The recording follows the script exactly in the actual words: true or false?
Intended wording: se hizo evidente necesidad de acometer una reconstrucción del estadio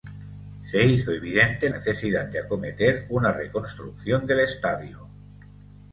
true